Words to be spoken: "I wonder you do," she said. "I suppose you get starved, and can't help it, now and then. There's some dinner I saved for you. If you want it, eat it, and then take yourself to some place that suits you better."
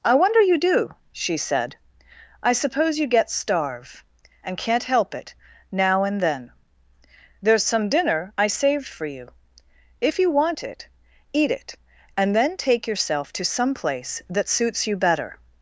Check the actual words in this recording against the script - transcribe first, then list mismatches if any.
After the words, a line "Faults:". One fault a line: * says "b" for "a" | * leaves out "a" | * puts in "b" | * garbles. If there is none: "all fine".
"I wonder you do," she said. "I suppose you get starve, and can't help it, now and then. There's some dinner I saved for you. If you want it, eat it, and then take yourself to some place that suits you better."
Faults:
* says "starve" for "starved"